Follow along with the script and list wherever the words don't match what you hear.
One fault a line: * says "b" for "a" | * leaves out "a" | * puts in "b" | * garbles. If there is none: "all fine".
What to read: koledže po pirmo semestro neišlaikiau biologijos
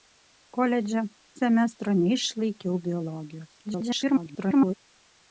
* leaves out "po pirmo"
* garbles